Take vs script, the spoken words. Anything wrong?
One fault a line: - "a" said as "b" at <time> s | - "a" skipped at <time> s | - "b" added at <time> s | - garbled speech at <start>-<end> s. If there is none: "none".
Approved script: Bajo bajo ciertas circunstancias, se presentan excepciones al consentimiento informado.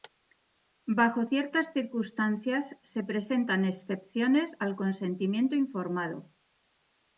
- "bajo" skipped at 1.2 s